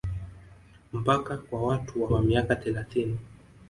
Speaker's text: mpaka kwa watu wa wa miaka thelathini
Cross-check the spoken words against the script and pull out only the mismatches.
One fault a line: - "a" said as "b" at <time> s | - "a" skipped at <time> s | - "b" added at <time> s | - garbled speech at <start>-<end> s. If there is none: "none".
none